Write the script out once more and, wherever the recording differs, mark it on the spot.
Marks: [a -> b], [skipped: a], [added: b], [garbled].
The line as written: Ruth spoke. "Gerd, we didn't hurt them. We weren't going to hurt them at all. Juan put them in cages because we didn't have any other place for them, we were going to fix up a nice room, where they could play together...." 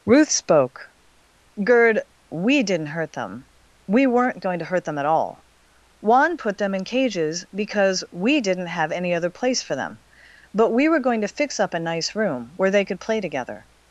Ruth spoke. "Gerd, we didn't hurt them. We weren't going to hurt them at all. Juan put them in cages because we didn't have any other place for them, [added: but] we were going to fix up a nice room, where they could play together...."